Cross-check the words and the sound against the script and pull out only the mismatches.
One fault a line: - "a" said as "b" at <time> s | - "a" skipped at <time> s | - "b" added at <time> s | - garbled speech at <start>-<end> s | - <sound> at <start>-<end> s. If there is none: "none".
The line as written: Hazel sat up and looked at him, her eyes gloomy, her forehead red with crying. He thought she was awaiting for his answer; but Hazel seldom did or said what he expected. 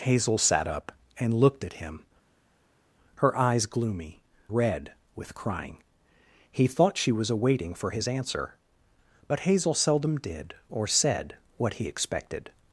- "her forehead" skipped at 4.2 s